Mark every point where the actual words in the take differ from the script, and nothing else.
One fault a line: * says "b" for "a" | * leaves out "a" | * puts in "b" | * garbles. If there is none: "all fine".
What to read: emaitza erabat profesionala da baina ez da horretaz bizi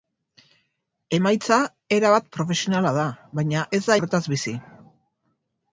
all fine